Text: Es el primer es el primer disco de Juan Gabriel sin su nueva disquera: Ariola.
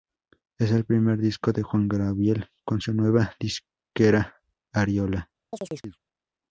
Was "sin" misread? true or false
true